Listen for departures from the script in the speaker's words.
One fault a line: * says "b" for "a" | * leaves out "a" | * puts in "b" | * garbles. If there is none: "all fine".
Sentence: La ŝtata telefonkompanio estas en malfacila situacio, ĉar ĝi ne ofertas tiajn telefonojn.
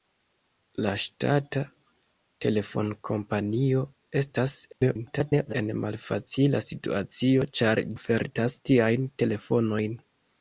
* garbles
* leaves out "ĝi ne"